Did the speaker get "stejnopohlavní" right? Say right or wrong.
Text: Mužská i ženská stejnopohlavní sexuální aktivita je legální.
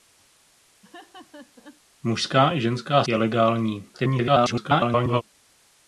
wrong